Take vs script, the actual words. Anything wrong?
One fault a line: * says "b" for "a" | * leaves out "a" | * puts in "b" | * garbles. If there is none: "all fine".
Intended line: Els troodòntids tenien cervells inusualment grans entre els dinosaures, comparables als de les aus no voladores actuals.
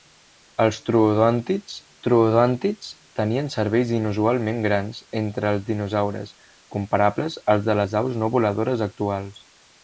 * puts in "troodòntids"